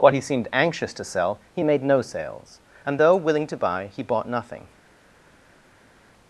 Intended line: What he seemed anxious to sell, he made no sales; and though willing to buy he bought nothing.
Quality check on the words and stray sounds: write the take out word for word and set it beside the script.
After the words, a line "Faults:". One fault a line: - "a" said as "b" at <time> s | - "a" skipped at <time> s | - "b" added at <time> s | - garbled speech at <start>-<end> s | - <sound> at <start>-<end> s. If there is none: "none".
What he seemed anxious to sell, he made no sales; and though willing to buy he bought nothing.
Faults:
none